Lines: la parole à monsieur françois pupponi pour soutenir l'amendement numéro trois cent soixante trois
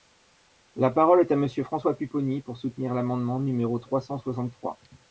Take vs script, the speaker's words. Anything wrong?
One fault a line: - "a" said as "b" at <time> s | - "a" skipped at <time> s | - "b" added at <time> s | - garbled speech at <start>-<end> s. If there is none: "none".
- "est" added at 1.2 s